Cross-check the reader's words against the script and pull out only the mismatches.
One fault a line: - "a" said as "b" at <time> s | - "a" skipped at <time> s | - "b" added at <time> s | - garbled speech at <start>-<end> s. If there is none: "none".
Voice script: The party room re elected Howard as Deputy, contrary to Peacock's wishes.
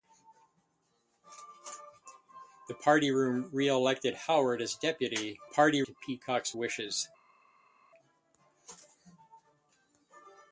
- "contrary" said as "party" at 5.4 s